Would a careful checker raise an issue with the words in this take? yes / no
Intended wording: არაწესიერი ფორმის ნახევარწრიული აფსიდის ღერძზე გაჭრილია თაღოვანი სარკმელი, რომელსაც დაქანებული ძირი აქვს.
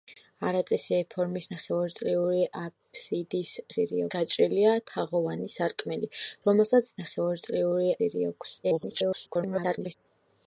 yes